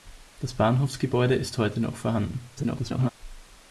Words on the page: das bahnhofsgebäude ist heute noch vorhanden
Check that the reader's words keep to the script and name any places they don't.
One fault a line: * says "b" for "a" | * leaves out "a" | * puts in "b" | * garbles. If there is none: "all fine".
* garbles